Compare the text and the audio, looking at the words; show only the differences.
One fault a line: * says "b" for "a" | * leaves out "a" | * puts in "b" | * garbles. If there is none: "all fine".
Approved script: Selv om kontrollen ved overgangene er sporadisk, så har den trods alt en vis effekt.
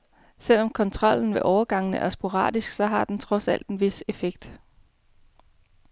all fine